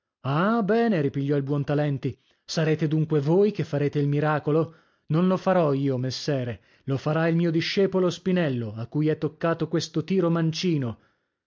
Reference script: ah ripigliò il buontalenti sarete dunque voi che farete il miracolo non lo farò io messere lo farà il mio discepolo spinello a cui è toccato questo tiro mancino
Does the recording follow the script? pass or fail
fail